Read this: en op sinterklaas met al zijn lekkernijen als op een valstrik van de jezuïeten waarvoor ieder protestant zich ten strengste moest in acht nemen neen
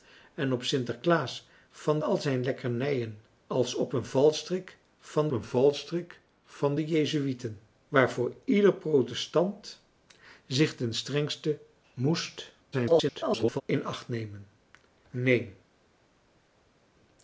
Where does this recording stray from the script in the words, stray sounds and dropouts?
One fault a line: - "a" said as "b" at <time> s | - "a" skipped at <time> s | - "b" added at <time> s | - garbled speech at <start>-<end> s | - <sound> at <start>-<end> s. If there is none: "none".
- "met" said as "van" at 1.7 s
- "een valstrik van" added at 5.3 s
- garbled speech at 12.7-13.6 s